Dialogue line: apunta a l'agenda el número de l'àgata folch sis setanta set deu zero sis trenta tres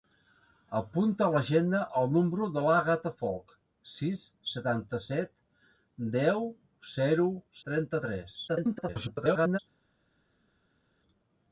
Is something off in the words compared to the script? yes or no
yes